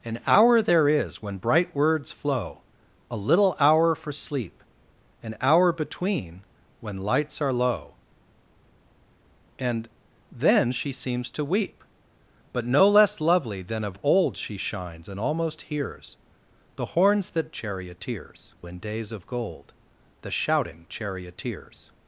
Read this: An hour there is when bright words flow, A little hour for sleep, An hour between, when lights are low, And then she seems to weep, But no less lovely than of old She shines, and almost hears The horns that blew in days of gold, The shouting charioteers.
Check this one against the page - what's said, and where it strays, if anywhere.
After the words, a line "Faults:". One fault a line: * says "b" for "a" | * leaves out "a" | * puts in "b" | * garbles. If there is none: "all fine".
An hour there is when bright words flow, A little hour for sleep, An hour between, when lights are low, And then she seems to weep, But no less lovely than of old She shines, and almost hears The horns that charioteers in days of gold, The shouting charioteers.
Faults:
* says "charioteers" for "blew"